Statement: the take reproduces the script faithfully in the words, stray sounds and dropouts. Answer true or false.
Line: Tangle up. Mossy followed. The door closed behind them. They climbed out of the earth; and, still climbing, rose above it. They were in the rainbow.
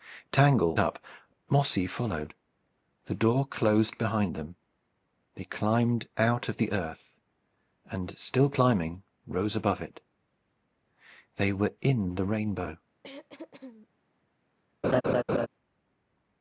false